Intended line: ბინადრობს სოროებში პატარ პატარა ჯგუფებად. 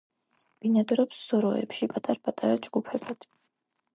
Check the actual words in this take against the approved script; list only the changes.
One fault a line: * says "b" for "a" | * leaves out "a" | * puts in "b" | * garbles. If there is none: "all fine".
all fine